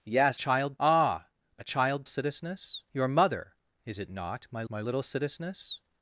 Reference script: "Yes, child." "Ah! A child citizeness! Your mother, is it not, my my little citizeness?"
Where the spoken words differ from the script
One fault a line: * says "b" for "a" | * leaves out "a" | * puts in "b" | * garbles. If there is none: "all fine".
all fine